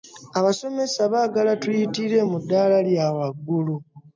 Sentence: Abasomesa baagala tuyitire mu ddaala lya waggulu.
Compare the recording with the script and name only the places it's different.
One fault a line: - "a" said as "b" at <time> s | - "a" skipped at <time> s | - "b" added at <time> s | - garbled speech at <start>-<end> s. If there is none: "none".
none